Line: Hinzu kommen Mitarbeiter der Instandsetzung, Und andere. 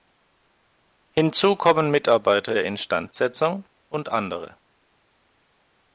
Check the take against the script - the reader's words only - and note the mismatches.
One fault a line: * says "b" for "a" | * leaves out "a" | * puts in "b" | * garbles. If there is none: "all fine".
all fine